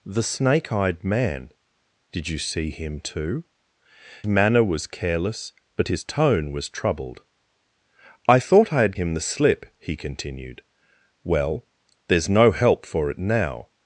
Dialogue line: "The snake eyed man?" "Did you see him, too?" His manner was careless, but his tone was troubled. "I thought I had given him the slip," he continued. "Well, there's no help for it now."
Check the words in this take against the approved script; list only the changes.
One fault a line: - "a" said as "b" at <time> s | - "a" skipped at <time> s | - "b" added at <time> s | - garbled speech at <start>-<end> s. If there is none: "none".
- "His" skipped at 3.4 s
- "given" skipped at 9.0 s